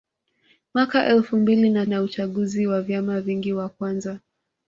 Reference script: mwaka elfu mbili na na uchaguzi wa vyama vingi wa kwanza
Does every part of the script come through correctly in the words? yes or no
yes